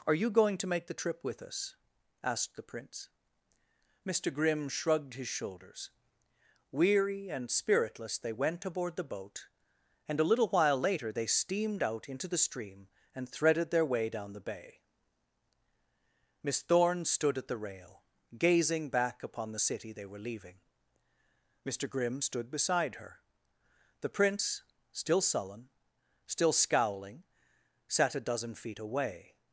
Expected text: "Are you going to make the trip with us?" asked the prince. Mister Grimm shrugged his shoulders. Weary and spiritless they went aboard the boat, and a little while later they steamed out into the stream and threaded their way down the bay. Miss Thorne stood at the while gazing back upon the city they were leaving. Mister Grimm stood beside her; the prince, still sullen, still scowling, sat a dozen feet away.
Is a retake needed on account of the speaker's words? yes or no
yes